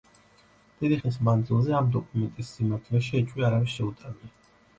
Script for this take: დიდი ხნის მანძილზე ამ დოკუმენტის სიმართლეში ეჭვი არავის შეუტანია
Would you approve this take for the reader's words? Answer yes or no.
yes